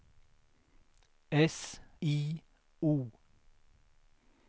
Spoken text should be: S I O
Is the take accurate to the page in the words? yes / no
yes